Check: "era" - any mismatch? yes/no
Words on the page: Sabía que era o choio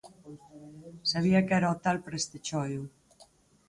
no